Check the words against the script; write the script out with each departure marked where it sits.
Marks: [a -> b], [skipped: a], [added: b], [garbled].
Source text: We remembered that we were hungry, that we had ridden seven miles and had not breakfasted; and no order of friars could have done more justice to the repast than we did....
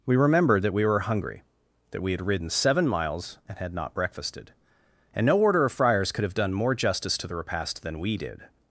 We remembered that we were hungry, that we had ridden seven miles and had not breakfasted; and no order of friars could have done more justice to the repast than we did....